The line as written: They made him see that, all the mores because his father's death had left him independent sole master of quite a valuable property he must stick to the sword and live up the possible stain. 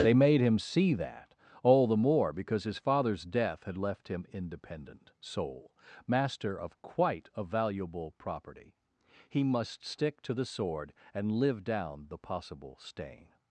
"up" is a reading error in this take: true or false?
true